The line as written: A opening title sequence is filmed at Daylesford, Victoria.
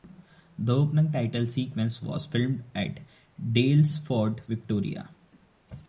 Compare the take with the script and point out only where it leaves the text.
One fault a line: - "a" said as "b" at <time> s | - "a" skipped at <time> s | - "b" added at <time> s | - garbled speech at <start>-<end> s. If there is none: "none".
- "A" said as "The" at 0.6 s
- "is" said as "was" at 2.0 s